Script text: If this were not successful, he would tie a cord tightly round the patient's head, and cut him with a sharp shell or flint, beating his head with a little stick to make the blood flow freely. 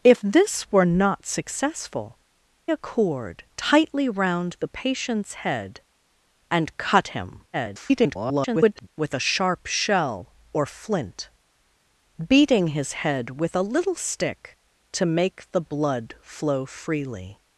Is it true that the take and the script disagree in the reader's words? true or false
true